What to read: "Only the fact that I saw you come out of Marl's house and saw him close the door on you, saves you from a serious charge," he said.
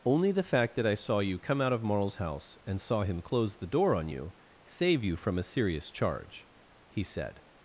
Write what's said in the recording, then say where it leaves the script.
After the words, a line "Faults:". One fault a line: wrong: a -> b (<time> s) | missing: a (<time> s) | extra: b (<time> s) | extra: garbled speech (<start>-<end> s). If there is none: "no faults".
"Only the fact that I saw you come out of Marl's house and saw him close the door on you, save you from a serious charge," he said.
Faults:
wrong: saves -> save (4.6 s)